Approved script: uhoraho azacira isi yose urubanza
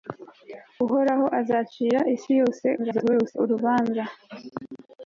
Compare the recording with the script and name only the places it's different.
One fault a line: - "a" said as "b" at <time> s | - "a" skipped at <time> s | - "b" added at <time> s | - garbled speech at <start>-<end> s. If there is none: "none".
- garbled speech at 2.8-3.4 s